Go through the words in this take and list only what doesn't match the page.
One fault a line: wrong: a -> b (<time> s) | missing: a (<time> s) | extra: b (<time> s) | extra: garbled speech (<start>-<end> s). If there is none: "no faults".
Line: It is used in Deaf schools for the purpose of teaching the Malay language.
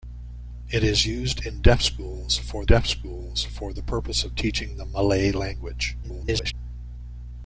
extra: Deaf schools for (2.6 s)
extra: garbled speech (6.0-6.5 s)